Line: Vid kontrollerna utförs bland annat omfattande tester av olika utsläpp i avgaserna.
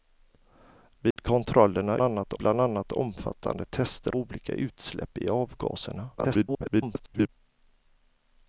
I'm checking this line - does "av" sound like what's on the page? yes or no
no